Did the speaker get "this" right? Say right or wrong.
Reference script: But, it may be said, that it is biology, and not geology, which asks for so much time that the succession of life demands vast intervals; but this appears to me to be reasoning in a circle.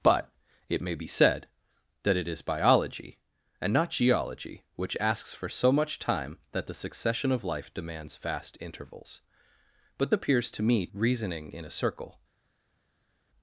wrong